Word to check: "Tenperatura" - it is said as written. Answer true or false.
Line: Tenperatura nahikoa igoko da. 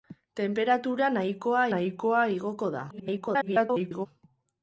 true